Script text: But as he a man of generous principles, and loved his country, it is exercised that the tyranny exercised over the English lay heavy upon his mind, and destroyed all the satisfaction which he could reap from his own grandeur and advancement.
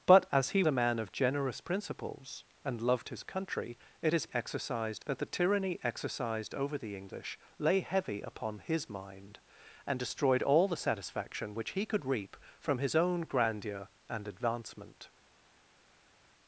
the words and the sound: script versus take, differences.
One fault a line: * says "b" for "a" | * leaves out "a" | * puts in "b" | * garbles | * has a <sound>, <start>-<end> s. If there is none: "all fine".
all fine